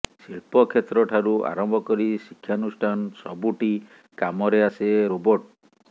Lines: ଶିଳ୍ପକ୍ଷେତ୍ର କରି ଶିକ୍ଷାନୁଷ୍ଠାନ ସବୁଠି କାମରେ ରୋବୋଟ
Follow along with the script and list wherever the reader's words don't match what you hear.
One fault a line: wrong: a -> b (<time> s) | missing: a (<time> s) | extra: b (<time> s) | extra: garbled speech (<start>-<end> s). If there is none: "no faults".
extra: ଠାରୁ ଆରମ୍ଭ (1.1 s)
extra: ଆସେ (4.7 s)